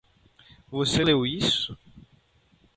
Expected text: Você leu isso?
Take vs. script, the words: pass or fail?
pass